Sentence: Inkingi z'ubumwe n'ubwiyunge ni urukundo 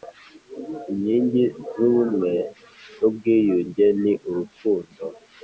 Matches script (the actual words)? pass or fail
pass